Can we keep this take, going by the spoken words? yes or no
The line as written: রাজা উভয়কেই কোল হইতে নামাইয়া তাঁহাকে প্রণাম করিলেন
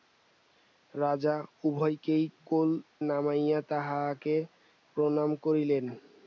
no